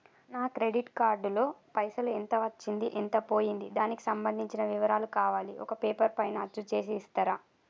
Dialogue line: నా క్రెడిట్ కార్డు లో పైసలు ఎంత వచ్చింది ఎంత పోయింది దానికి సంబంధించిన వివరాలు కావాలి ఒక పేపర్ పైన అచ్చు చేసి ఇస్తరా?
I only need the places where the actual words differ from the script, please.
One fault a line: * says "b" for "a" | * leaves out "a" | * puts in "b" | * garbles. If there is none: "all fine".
all fine